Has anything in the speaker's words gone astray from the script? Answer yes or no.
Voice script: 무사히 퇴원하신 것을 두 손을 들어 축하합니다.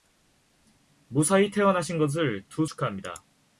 yes